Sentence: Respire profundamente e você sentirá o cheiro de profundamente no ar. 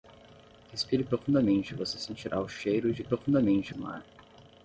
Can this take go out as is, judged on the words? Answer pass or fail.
pass